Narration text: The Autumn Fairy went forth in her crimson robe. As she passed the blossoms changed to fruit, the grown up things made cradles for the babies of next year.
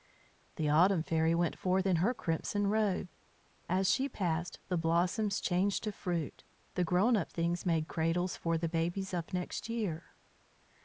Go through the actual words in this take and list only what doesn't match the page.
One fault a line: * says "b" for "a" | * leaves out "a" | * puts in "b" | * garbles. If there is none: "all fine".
all fine